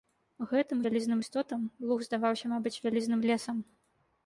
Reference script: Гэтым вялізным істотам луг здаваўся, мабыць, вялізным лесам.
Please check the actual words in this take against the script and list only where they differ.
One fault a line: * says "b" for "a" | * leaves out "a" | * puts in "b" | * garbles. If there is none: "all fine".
all fine